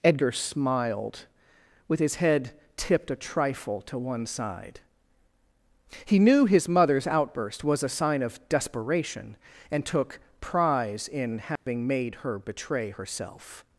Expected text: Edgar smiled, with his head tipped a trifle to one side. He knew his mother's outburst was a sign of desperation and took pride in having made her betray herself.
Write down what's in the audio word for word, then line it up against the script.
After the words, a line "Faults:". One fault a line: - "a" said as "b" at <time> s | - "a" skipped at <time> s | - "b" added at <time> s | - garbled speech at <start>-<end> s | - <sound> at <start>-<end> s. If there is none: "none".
Edgar smiled, with his head tipped a trifle to one side. He knew his mother's outburst was a sign of desperation and took prize in having made her betray herself.
Faults:
- "pride" said as "prize" at 10.4 s
- dropout at 11.6-11.7 s